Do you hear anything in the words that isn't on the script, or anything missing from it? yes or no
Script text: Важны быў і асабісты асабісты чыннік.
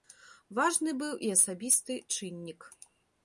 yes